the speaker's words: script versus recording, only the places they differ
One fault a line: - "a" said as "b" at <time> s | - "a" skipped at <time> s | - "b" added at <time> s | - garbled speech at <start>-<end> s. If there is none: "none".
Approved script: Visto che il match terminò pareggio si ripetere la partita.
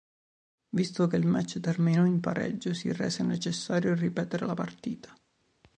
- "in" added at 2.0 s
- "rese necessario" added at 2.9 s